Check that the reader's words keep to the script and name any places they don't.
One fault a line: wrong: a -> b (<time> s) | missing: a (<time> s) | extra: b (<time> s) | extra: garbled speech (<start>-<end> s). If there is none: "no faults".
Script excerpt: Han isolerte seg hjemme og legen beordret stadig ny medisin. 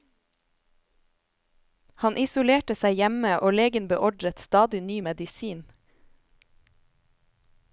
no faults